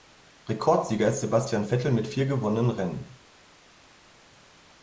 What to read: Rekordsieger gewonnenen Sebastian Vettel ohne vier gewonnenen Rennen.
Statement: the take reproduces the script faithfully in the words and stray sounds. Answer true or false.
false